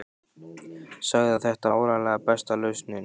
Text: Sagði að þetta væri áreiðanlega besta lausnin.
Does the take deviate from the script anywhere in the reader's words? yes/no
yes